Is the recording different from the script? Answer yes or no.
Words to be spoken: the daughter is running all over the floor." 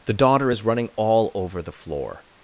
no